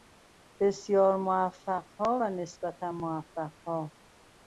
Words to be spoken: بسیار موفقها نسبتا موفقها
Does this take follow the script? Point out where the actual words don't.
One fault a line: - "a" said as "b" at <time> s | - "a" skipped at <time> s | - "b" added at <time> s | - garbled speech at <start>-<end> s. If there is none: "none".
- "و" added at 2.2 s